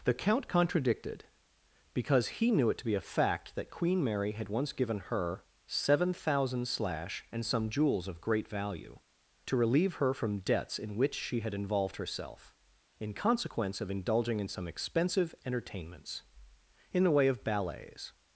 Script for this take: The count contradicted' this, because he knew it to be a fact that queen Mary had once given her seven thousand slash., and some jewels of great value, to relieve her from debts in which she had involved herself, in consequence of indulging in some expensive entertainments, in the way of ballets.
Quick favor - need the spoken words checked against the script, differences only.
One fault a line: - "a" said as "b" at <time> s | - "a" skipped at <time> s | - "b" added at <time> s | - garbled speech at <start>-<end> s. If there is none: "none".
- "this" skipped at 1.2 s